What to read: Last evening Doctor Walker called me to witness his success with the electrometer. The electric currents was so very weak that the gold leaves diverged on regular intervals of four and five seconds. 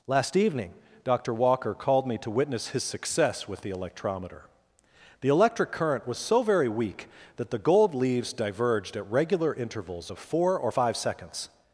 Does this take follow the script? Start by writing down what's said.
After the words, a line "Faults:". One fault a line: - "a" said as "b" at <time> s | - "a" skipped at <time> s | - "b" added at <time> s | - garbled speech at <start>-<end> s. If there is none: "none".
Last evening Doctor Walker called me to witness his success with the electrometer. The electric current was so very weak that the gold leaves diverged at regular intervals of four or five seconds.
Faults:
- "currents" said as "current" at 5.7 s
- "on" said as "at" at 8.9 s
- "and" said as "or" at 10.6 s